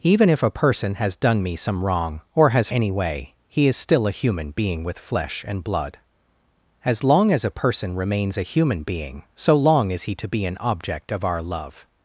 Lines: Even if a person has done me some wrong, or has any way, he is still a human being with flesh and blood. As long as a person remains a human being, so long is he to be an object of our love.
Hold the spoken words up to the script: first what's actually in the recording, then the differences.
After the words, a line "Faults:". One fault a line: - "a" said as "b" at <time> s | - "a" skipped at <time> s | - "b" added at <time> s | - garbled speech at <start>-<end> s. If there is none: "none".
Even if a person has done me some wrong, or has any way, he is still a human being with flesh and blood. As long as a person remains a human being, so long is he to be an object of our love.
Faults:
none